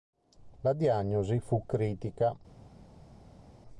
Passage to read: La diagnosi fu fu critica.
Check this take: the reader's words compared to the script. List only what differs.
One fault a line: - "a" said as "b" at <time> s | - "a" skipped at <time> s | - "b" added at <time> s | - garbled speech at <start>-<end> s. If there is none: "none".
- "fu" skipped at 1.7 s